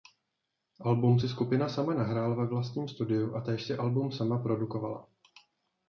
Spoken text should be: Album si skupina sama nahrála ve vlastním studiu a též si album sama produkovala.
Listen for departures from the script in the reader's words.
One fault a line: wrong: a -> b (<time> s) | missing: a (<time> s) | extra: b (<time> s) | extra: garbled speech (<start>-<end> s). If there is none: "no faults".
no faults